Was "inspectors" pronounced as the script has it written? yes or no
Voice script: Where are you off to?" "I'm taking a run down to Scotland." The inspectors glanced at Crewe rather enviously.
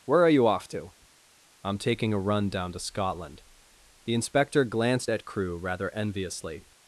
no